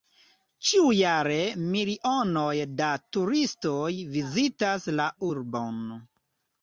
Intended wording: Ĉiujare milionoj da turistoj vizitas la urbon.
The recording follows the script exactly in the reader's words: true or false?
true